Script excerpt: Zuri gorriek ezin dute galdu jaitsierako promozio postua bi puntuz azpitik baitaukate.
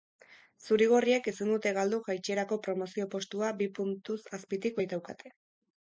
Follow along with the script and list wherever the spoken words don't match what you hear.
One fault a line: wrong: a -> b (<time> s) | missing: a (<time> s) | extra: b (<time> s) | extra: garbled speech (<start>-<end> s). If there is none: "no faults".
no faults